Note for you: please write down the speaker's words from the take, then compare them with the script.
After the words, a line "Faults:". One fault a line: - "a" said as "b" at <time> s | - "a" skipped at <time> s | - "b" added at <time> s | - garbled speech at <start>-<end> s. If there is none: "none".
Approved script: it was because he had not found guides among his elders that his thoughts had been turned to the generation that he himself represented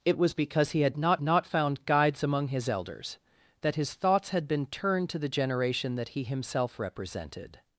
it was because he had not not found guides among his elders that his thoughts had been turned to the generation that he himself represented
Faults:
- "not" added at 1.2 s